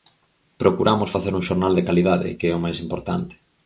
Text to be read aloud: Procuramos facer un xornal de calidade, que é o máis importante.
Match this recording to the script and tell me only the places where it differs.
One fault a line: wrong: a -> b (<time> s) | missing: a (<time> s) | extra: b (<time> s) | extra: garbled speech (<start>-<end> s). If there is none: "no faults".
no faults